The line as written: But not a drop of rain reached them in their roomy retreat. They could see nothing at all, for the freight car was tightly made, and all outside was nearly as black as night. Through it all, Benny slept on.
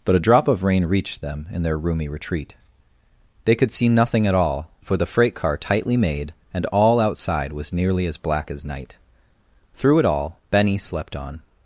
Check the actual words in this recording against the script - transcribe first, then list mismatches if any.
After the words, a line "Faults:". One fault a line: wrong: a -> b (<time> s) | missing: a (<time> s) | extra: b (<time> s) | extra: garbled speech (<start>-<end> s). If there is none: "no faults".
But a drop of rain reached them in their roomy retreat. They could see nothing at all, for the freight car tightly made, and all outside was nearly as black as night. Through it all, Benny slept on.
Faults:
missing: not (0.1 s)
missing: was (5.6 s)